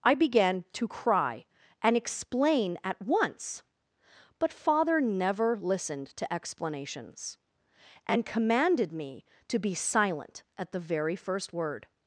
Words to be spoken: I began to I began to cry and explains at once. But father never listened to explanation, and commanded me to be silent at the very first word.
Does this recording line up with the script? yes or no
no